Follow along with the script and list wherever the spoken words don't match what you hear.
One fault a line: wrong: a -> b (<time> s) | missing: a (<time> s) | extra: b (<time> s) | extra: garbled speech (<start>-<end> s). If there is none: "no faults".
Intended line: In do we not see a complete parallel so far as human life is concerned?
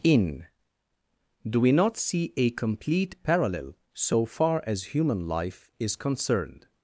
no faults